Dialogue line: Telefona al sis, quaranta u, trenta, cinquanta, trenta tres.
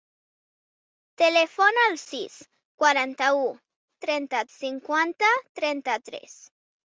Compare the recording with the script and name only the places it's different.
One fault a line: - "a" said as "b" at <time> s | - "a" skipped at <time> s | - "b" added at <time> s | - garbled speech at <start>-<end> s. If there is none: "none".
none